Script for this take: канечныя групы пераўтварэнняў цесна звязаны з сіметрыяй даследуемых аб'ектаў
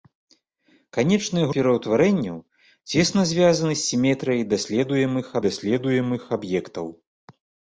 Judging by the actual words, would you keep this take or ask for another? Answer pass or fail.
fail